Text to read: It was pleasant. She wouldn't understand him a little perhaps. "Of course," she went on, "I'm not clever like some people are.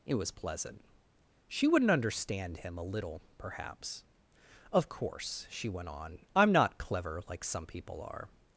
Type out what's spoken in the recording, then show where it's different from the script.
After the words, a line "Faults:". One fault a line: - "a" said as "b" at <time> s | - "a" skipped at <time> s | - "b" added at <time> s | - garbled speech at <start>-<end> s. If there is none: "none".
It was pleasant. She wouldn't understand him a little perhaps. "Of course," she went on, "I'm not clever like some people are.
Faults:
none